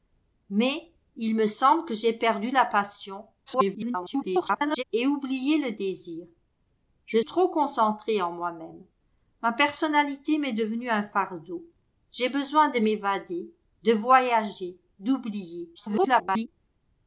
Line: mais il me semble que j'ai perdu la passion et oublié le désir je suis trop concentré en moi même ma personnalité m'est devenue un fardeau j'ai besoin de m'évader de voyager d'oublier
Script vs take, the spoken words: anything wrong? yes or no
yes